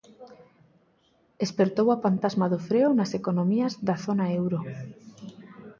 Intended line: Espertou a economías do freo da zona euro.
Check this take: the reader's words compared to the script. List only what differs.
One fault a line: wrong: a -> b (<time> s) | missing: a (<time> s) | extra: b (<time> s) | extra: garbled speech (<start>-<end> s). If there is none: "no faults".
wrong: economías -> pantasma (2.0 s)
extra: nas economías (3.0 s)